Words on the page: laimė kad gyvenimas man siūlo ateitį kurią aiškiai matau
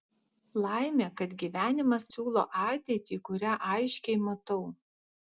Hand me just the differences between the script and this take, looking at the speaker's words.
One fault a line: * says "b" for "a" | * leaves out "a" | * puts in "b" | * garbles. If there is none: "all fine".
* leaves out "man"